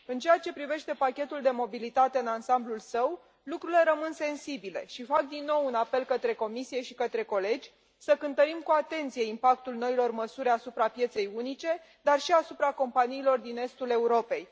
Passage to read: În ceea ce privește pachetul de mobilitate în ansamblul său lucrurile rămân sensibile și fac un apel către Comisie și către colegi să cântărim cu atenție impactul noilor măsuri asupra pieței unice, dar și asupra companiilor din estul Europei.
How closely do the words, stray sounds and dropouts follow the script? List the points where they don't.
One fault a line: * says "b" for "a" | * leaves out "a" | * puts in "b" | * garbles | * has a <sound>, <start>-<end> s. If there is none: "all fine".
* puts in "din nou"